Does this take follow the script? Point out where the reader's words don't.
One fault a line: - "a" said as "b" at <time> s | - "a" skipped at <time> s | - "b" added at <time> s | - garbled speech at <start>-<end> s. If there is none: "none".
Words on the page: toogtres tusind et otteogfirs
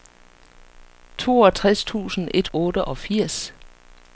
none